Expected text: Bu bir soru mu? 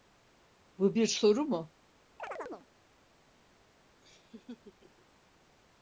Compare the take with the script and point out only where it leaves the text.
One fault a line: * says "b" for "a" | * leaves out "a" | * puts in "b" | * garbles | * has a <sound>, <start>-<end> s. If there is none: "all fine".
* has a chirp, 2.2-2.7 s
* has a laugh, 4.0-5.1 s